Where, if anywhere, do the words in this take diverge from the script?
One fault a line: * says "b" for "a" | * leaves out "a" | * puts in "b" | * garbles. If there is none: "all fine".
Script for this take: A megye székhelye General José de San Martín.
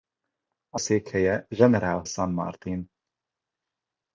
* leaves out "megye"
* leaves out "José de"